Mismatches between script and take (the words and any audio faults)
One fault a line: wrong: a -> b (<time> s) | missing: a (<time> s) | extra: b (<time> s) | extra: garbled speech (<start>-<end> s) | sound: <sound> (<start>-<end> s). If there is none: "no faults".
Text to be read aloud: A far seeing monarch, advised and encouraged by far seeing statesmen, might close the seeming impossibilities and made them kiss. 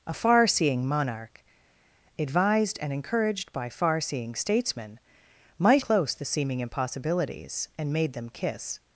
no faults